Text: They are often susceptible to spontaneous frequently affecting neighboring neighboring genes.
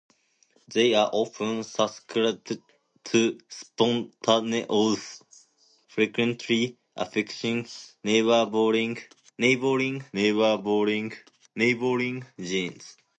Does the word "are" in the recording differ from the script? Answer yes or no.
no